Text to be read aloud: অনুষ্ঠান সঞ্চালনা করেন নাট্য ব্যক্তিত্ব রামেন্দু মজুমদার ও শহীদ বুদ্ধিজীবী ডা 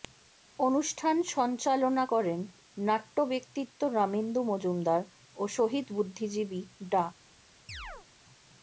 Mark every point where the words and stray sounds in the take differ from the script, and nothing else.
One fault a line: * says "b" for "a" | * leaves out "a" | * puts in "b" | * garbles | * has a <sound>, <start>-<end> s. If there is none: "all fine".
* has a chirp, 7.7-8.1 s